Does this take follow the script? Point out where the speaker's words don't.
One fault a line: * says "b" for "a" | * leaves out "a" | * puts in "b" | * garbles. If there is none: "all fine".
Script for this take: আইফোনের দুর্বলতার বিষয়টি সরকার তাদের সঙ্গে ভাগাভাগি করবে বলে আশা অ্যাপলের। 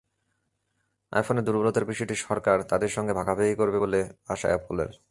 all fine